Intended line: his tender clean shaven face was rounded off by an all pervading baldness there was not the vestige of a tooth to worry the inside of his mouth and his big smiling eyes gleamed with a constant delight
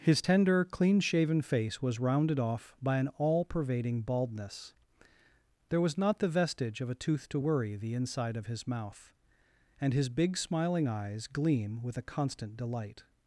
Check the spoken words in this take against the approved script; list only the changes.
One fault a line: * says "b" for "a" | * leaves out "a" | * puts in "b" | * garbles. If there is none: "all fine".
* says "gleam" for "gleamed"